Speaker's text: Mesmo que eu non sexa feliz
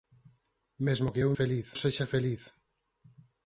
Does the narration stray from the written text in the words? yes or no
yes